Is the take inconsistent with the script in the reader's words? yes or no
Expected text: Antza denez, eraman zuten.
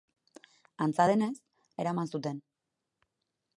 no